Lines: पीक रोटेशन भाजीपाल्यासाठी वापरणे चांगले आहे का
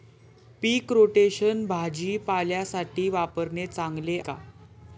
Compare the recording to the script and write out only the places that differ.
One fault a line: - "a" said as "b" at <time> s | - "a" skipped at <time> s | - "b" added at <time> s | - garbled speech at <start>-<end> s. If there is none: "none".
- "आहे" skipped at 4.2 s